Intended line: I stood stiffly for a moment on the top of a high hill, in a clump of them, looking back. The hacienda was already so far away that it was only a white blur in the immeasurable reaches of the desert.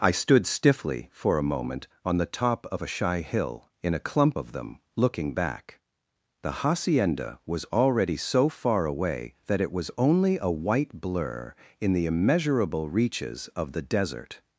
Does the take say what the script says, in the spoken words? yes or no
no